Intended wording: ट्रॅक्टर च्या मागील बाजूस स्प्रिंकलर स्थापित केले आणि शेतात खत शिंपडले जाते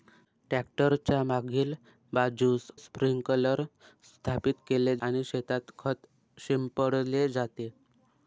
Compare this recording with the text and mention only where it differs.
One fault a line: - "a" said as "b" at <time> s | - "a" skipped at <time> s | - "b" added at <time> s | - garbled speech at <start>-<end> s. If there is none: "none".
none